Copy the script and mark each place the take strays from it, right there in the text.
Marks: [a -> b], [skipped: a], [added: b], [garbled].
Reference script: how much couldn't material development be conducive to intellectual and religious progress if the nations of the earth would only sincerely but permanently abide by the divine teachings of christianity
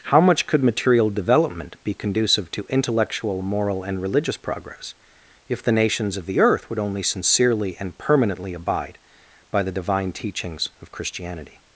how much [couldn't -> could] material development be conducive to intellectual [added: moral] and religious progress if the nations of the earth would only sincerely [but -> and] permanently abide by the divine teachings of christianity